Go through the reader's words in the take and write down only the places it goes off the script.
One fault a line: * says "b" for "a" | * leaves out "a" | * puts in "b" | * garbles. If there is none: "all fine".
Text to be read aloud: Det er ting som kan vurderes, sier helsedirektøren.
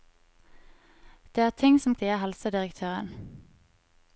* leaves out "kan vurderes"